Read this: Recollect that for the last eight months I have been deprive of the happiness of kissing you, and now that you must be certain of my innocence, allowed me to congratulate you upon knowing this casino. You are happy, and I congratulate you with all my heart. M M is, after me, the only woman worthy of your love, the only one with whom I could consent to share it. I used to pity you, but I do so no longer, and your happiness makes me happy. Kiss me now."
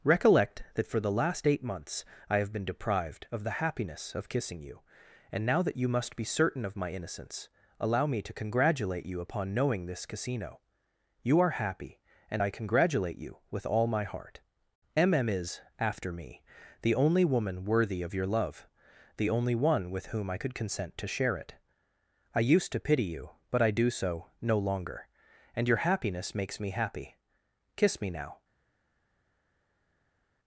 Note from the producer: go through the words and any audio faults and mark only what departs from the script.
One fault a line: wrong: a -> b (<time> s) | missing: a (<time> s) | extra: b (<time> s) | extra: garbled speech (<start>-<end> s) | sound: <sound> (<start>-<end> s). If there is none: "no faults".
wrong: deprive -> deprived (2.6 s)
wrong: allowed -> allow (7.8 s)